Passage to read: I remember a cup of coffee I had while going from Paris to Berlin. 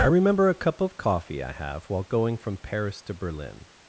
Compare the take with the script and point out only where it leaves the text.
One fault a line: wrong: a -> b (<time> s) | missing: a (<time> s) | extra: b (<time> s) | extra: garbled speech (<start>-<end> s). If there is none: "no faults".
wrong: had -> have (1.5 s)